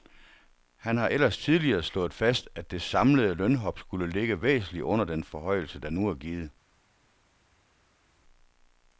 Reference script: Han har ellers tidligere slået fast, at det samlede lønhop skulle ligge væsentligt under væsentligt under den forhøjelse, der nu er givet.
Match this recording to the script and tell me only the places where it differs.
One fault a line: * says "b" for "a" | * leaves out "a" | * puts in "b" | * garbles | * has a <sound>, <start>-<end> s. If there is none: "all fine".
* leaves out "væsentligt under"